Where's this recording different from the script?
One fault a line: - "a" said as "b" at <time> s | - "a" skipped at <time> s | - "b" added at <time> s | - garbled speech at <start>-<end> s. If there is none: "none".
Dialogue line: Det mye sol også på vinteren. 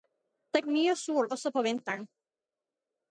none